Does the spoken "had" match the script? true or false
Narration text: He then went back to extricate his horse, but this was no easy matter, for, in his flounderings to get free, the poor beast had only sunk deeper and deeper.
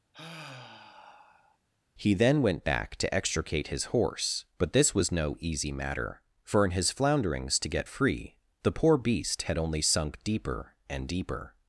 true